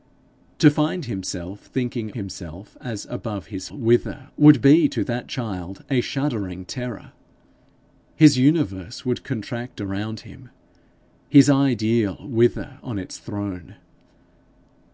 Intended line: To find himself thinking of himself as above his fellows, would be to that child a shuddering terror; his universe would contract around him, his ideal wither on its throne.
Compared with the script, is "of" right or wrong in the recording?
wrong